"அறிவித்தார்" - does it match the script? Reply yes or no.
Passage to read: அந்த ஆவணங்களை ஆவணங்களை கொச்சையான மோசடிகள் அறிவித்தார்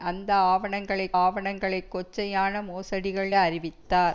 yes